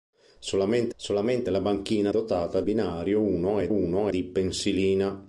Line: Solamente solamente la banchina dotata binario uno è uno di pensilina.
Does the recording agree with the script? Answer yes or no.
yes